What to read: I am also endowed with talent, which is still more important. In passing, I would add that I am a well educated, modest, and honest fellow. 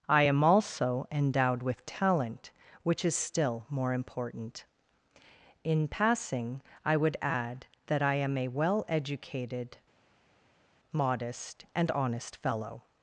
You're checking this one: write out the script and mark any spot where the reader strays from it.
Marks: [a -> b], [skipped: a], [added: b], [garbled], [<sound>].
I am also endowed with talent, which is still more important. In passing, I would add that I am a well educated, modest, and honest fellow.